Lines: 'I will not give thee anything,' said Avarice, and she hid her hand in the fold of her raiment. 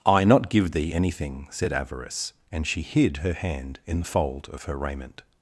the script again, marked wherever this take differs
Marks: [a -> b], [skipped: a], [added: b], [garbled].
'I [skipped: will] not give thee anything,' said Avarice, and she hid her hand in the fold of her raiment.